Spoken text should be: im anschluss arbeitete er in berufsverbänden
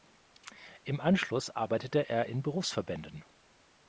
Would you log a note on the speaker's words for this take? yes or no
no